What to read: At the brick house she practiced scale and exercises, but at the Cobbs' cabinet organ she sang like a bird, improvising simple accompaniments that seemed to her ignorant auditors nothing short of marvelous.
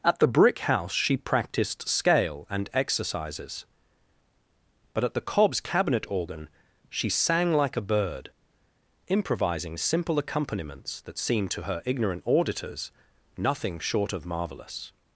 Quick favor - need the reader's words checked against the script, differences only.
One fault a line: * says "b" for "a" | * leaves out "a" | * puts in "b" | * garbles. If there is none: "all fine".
all fine